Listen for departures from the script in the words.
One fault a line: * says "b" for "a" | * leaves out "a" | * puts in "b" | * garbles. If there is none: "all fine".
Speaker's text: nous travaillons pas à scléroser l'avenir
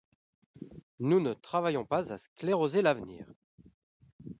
* puts in "ne"